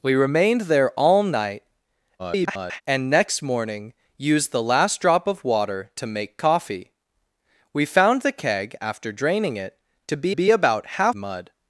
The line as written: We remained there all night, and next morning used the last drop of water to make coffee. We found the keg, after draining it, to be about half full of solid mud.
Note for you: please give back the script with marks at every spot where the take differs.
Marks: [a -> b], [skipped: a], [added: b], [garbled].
We remained there all night, [garbled] and next morning used the last drop of water to make coffee. We found the keg, after draining it, to be [added: be] about half [skipped: full of solid] mud.